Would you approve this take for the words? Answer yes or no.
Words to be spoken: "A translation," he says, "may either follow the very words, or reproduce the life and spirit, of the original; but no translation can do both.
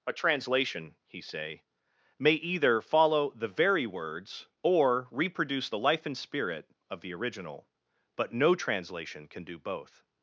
no